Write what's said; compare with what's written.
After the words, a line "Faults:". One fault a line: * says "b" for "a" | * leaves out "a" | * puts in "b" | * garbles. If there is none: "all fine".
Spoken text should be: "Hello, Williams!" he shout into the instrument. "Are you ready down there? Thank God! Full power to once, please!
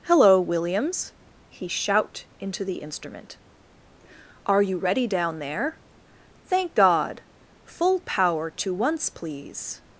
"Hello, Williams!" he shout into the instrument. "Are you ready down there? Thank God! Full power to once, please!
Faults:
all fine